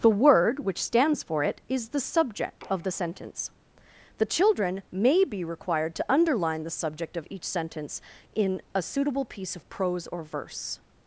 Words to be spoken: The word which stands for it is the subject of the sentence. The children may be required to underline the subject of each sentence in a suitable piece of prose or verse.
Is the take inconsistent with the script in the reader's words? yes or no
no